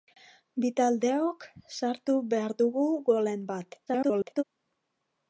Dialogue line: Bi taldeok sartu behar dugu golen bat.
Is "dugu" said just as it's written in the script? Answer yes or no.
yes